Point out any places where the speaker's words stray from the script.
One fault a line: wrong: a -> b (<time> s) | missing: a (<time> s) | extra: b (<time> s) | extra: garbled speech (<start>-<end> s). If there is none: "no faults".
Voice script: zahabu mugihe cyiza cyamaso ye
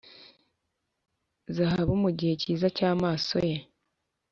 no faults